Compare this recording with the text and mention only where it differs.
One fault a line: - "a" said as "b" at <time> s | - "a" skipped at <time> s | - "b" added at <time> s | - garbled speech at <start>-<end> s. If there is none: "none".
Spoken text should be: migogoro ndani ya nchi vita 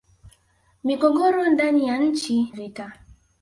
none